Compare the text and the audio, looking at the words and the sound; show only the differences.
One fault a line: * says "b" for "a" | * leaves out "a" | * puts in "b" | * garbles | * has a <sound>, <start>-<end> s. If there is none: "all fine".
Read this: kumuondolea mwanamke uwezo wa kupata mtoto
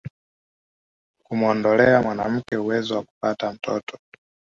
* has a dropout, 2.5-2.5 s